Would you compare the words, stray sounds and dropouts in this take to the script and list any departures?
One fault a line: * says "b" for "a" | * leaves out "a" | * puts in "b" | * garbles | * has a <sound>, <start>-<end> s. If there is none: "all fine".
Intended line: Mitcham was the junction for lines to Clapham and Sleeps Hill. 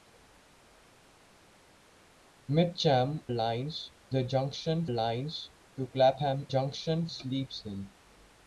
* says "lines" for "was"
* leaves out "for"
* says "junction" for "and"